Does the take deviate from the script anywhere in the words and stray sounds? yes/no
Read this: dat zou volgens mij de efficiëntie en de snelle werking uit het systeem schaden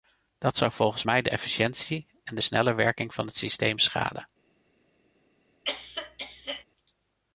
yes